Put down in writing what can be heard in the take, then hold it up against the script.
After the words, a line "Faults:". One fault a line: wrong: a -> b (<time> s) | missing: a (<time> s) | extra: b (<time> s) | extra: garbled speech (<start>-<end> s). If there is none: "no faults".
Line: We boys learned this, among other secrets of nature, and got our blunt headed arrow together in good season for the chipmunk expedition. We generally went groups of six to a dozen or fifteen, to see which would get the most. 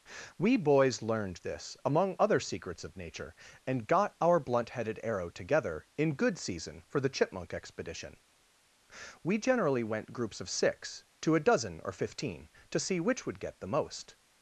We boys learned this, among other secrets of nature, and got our blunt headed arrow together in good season for the chipmunk expedition. We generally went groups of six to a dozen or fifteen, to see which would get the most.
Faults:
no faults